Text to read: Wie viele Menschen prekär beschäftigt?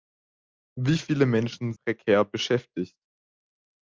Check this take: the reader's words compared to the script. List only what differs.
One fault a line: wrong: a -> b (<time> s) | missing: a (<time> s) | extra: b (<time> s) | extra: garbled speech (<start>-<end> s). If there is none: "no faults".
no faults